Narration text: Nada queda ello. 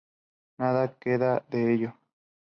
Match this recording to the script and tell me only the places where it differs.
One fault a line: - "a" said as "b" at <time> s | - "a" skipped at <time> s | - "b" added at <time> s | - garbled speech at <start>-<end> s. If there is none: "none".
- "de" added at 1.5 s